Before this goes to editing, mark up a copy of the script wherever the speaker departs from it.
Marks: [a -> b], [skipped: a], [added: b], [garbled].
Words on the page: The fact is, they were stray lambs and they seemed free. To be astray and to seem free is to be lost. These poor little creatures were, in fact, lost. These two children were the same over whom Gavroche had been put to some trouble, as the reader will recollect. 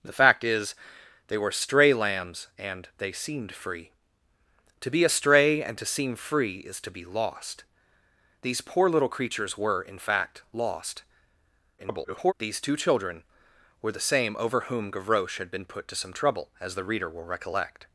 The fact is, they were stray lambs and they seemed free. To be astray and to seem free is to be lost. These poor little creatures were, in fact, lost. [garbled] These two children were the same over whom Gavroche had been put to some trouble, as the reader will recollect.